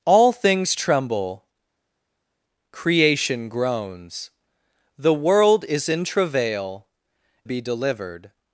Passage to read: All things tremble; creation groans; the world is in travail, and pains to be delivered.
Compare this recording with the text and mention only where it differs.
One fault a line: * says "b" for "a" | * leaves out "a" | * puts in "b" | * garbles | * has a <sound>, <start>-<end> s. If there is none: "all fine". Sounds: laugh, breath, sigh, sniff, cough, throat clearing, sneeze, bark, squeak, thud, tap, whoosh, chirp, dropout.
* leaves out "and pains to"